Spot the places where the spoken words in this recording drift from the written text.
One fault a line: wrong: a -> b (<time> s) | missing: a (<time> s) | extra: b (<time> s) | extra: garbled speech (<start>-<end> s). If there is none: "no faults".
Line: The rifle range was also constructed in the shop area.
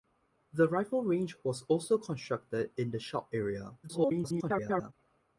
extra: garbled speech (3.8-4.9 s)